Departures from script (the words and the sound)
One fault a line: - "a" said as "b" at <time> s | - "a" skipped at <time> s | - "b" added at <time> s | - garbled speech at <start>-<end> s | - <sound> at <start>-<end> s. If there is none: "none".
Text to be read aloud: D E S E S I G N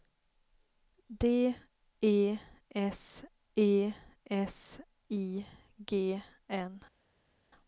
none